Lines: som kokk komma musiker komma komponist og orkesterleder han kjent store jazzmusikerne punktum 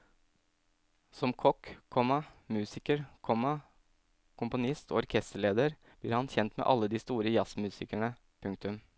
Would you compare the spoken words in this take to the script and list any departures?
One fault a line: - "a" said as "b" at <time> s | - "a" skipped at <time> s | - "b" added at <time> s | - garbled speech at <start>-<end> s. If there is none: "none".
- "blir" added at 6.0 s
- "med alle de" added at 6.6 s